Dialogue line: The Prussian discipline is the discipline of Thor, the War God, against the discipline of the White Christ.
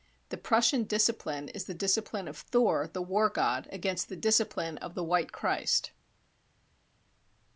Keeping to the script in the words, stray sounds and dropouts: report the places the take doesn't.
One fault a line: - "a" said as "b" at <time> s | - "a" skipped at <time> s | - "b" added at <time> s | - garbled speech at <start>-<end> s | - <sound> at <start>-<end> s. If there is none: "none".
none